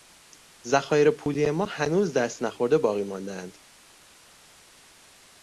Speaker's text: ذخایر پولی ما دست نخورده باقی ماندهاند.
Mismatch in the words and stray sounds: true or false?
true